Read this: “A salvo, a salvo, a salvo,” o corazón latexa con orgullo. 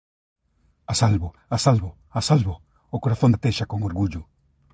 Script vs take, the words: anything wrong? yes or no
no